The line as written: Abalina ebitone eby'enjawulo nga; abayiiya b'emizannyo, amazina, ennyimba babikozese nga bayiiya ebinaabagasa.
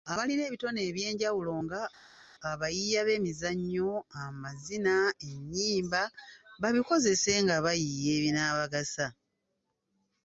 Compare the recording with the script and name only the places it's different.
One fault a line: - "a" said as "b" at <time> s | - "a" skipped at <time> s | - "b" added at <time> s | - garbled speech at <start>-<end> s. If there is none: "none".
none